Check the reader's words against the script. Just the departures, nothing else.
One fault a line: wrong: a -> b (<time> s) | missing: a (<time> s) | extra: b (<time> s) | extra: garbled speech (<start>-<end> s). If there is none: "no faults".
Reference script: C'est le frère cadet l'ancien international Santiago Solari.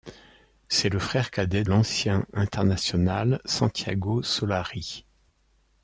no faults